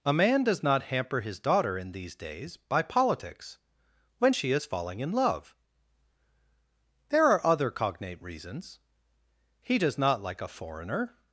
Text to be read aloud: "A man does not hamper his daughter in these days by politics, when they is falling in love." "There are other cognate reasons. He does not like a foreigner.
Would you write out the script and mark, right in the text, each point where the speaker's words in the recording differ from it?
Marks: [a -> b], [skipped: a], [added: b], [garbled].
"A man does not hamper his daughter in these days by politics, when [they -> she] is falling in love." "There are other cognate reasons. He does not like a foreigner.